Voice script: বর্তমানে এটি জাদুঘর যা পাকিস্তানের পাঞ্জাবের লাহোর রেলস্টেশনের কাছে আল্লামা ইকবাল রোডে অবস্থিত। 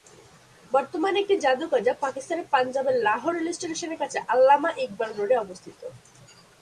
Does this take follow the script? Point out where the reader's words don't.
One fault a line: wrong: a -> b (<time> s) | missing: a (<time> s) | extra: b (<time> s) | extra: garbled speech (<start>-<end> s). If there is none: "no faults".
no faults